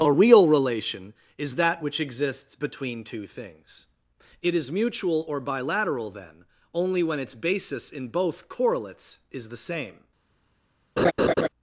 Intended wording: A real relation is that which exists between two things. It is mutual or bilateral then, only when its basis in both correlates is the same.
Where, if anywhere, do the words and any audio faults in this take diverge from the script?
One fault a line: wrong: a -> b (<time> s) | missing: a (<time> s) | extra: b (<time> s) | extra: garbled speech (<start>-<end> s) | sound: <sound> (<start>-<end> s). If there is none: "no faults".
sound: laugh (11.0-11.5 s)